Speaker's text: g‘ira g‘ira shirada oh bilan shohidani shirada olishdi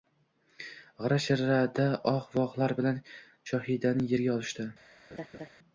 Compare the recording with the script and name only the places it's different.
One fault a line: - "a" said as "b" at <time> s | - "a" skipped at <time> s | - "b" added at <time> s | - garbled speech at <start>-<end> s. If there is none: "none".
- "g‘ira" skipped at 1.2 s
- "vohlar" added at 2.4 s
- "shirada" said as "yerga" at 4.1 s